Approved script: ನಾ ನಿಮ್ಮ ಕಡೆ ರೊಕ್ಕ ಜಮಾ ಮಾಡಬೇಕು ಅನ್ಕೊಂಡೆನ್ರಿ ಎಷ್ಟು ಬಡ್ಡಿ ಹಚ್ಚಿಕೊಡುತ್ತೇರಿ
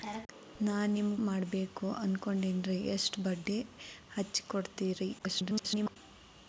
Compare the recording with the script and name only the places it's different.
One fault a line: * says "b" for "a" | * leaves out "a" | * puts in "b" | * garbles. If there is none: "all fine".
* leaves out "ಕಡೆ ರೊಕ್ಕ ಜಮಾ"
* garbles